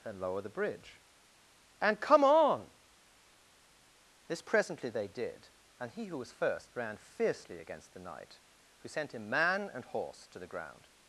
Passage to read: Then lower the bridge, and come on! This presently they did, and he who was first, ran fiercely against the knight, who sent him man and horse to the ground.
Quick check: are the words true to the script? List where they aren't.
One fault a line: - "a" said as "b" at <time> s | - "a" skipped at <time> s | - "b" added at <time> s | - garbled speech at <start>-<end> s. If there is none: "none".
- "Then" said as "And" at 0.0 s